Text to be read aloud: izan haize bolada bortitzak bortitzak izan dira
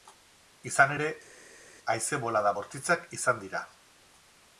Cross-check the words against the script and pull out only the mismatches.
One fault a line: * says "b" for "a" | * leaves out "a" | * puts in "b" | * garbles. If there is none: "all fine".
* puts in "ere"
* leaves out "bortitzak"